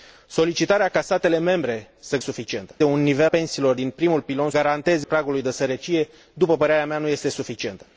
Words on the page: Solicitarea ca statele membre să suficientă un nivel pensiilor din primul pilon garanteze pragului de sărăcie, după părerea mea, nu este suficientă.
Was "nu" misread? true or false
false